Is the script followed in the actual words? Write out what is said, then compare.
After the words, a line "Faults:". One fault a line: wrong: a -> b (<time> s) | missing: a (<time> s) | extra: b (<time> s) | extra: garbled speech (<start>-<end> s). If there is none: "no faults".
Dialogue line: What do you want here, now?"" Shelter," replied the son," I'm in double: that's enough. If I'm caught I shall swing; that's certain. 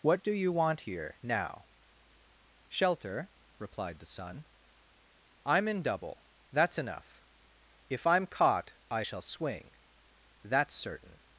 What do you want here, now?"" Shelter," replied the son," I'm in double: that's enough. If I'm caught I shall swing; that's certain.
Faults:
no faults